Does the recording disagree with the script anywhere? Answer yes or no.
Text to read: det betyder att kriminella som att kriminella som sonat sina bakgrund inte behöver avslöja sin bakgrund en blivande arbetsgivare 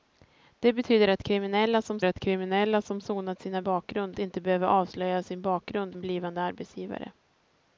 no